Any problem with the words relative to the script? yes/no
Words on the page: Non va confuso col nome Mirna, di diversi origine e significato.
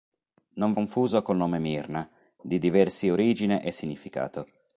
yes